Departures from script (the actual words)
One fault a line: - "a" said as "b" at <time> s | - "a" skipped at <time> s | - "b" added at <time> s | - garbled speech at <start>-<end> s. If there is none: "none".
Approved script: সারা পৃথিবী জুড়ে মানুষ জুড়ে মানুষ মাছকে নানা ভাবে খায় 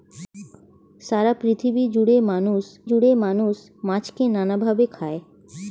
none